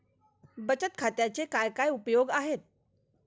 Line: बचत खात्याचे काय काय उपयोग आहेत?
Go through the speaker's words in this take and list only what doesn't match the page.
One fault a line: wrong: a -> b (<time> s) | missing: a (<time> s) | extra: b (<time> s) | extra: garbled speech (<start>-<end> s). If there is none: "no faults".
no faults